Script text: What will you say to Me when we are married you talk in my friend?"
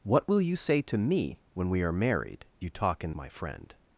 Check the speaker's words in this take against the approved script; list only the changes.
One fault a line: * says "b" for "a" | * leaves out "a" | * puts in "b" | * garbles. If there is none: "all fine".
all fine